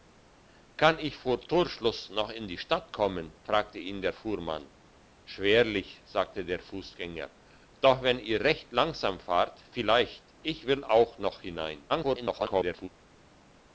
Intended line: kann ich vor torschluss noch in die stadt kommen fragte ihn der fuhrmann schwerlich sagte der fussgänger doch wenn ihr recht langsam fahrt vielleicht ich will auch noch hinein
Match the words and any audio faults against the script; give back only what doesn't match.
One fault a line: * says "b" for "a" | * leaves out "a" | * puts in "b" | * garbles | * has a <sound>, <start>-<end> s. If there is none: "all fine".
* garbles